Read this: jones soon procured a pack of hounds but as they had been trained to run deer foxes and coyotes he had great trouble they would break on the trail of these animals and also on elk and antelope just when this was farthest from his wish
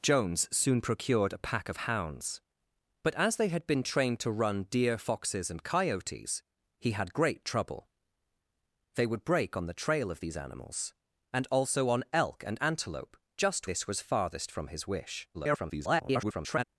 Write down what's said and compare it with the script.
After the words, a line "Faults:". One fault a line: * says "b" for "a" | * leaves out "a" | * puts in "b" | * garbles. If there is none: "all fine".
jones soon procured a pack of hounds but as they had been trained to run deer foxes and coyotes he had great trouble they would break on the trail of these animals and also on elk and antelope just this was farthest from his wish [garbled]
Faults:
* leaves out "when"
* garbles